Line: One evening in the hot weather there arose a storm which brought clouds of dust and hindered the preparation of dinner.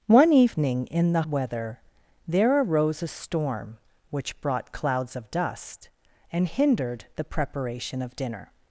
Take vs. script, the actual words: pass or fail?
fail